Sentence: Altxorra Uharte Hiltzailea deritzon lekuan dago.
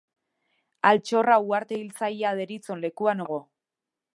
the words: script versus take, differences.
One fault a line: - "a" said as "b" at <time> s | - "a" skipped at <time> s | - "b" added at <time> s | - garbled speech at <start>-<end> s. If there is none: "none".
none